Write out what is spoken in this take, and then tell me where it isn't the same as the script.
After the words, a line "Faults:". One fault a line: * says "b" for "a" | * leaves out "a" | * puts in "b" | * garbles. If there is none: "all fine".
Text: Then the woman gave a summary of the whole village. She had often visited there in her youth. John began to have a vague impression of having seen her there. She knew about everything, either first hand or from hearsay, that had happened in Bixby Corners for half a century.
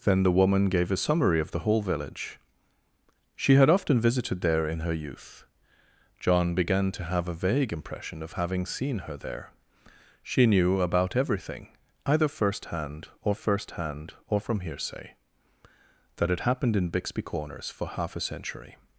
Then the woman gave a summary of the whole village. She had often visited there in her youth. John began to have a vague impression of having seen her there. She knew about everything, either first hand or first hand or from hearsay, that had happened in Bixby Corners for half a century.
Faults:
* puts in "first hand or"